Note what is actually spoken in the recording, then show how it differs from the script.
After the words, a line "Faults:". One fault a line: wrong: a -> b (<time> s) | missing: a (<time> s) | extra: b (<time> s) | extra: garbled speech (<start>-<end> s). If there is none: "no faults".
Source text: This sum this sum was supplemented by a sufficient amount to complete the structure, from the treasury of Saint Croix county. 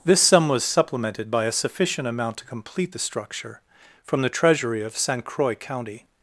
This sum was supplemented by a sufficient amount to complete the structure, from the treasury of Saint Croix county.
Faults:
missing: this sum (0.5 s)